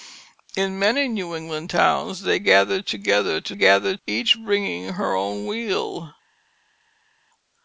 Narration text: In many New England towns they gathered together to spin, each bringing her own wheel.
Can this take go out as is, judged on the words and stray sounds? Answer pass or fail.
fail